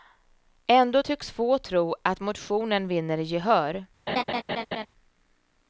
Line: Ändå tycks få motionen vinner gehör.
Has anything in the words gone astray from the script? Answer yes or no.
yes